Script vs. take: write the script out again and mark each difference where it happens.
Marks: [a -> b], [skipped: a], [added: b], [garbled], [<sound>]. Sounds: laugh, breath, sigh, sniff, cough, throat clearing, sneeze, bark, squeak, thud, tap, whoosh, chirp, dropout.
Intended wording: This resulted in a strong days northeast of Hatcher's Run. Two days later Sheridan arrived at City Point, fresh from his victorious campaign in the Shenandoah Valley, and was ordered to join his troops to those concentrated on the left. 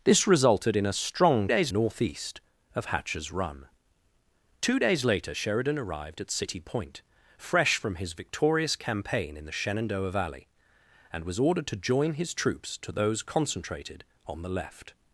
This resulted in a strong days northeast of Hatcher's Run. Two days later Sheridan arrived at City Point, fresh from his victorious campaign in the Shenandoah Valley, and was ordered to join his troops to those concentrated on the left.